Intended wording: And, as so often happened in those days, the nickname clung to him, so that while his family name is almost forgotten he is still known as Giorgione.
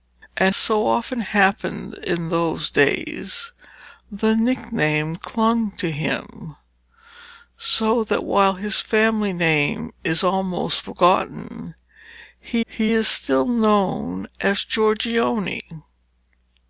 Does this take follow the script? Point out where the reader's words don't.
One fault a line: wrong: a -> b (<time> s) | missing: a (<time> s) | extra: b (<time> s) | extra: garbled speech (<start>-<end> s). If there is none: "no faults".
missing: as (0.6 s)
extra: he (12.7 s)